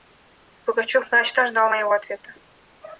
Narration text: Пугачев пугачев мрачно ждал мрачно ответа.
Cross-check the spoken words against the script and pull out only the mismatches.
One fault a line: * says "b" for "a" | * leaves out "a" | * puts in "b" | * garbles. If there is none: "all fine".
* leaves out "пугачев"
* says "моего" for "мрачно"